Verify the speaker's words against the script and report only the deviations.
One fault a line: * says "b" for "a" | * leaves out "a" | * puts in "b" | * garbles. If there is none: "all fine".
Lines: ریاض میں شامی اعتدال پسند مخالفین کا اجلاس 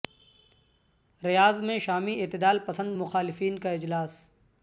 all fine